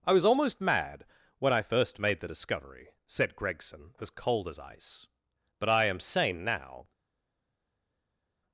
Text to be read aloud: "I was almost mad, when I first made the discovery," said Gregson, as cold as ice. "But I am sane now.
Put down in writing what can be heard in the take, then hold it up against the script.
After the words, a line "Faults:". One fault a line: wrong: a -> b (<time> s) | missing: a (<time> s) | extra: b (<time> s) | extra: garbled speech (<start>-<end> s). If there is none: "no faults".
"I was almost mad, when I first made the discovery," said Gregson, as cold as ice. "But I am sane now.
Faults:
no faults